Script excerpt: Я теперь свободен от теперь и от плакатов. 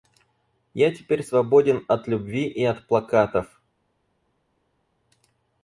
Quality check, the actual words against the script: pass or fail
fail